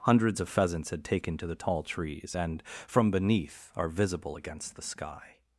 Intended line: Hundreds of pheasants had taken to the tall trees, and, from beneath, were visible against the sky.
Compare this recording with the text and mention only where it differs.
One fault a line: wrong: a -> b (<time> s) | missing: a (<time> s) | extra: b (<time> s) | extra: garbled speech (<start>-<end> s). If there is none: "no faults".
wrong: were -> are (3.8 s)